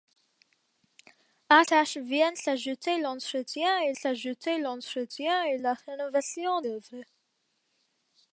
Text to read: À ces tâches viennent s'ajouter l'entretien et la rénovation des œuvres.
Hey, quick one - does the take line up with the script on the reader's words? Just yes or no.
no